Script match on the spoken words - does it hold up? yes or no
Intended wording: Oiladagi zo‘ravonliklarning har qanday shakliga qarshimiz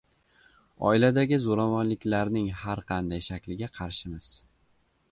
yes